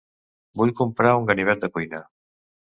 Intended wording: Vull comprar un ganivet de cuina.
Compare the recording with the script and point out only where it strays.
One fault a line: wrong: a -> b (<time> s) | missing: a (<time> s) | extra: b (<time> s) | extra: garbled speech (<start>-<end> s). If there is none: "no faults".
no faults